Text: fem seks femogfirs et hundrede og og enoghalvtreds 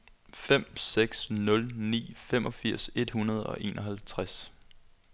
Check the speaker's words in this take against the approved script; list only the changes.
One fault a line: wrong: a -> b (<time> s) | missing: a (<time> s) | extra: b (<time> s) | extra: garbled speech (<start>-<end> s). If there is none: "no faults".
extra: nul ni (1.3 s)
missing: og (3.6 s)